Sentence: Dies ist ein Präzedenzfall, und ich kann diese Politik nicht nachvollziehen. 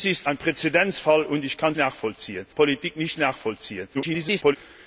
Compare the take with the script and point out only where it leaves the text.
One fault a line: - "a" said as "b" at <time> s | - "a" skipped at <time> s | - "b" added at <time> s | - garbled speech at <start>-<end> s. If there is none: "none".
- "diese" said as "nachvollziehen" at 1.7 s
- garbled speech at 3.9-4.6 s